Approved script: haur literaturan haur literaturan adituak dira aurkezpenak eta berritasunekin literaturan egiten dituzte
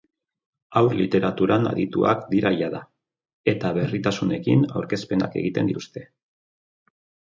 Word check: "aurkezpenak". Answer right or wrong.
wrong